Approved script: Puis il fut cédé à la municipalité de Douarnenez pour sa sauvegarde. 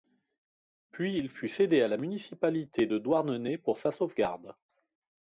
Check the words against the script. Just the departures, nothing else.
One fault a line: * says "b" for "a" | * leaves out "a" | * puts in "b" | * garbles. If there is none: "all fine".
all fine